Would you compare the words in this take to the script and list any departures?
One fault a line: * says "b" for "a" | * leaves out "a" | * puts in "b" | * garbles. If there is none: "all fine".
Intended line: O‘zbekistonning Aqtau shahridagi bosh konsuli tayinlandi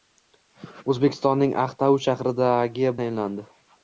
* leaves out "bosh konsuli"